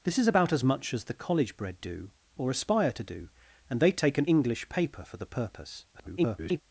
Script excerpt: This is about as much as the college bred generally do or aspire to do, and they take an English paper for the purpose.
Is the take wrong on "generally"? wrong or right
wrong